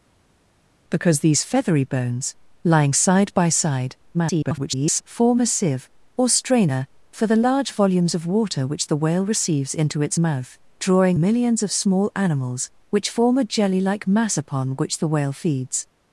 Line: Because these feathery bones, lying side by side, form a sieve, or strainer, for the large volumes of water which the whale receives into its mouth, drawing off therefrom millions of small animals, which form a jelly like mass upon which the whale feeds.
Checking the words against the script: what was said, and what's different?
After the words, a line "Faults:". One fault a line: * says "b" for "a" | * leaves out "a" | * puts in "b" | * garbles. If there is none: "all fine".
Because these feathery bones, lying side by side, [garbled] form a sieve, or strainer, for the large volumes of water which the whale receives into its mouth, drawing millions of small animals, which form a jelly like mass upon which the whale feeds.
Faults:
* garbles
* leaves out "off therefrom"